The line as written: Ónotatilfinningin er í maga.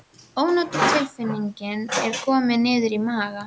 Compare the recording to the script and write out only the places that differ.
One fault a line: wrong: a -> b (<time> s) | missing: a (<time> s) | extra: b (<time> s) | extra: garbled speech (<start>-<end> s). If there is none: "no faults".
extra: komin niður (2.2 s)